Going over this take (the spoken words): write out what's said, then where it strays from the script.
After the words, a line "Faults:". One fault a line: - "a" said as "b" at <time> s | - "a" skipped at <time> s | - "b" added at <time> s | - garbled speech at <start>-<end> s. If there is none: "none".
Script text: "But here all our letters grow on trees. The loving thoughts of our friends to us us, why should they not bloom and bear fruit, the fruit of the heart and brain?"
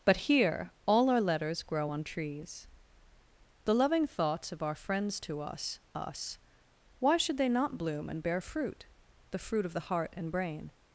"But here all our letters grow on trees. The loving thoughts of our friends to us us, why should they not bloom and bear fruit, the fruit of the heart and brain?"
Faults:
none